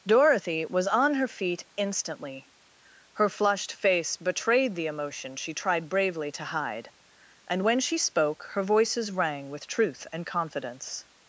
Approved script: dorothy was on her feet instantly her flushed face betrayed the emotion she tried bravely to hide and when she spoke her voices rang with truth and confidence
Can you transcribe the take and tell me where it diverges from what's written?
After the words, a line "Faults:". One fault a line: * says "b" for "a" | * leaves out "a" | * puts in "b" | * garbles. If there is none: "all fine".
dorothy was on her feet instantly her flushed face betrayed the emotion she tried bravely to hide and when she spoke her voices rang with truth and confidence
Faults:
all fine